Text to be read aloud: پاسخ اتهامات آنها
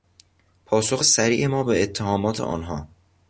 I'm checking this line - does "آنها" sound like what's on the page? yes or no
yes